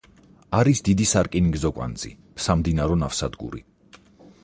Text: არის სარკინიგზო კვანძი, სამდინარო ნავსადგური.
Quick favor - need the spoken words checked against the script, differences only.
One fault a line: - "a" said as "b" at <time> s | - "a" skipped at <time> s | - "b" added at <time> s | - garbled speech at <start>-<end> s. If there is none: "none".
- "დიდი" added at 0.9 s